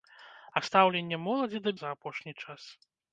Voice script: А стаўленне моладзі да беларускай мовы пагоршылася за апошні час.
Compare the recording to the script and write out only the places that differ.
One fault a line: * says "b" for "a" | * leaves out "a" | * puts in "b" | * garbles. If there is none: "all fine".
* leaves out "беларускай мовы пагоршылася"